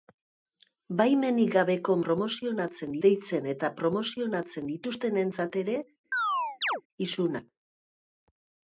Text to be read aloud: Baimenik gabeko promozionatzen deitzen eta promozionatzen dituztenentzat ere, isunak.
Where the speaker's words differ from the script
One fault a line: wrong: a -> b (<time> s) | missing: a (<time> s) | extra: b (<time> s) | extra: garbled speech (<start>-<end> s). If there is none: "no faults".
no faults